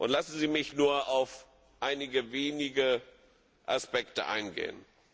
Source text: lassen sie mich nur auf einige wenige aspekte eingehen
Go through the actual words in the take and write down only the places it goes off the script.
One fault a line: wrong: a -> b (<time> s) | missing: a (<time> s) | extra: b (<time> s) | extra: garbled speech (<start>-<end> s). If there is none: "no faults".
no faults